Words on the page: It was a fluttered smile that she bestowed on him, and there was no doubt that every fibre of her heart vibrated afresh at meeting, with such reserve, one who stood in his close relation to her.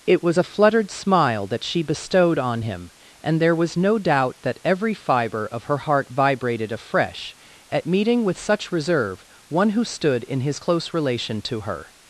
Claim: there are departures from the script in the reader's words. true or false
false